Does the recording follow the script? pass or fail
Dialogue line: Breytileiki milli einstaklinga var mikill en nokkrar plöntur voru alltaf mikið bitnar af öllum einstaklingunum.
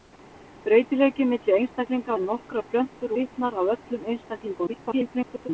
fail